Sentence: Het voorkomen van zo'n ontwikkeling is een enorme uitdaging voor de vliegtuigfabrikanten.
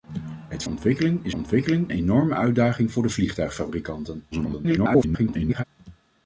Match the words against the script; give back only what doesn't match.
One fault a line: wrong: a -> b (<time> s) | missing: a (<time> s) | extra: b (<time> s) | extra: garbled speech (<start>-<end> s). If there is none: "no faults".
missing: voorkomen van zo'n (0.6 s)
wrong: een -> ontwikkeling (1.3 s)
extra: garbled speech (4.3-5.6 s)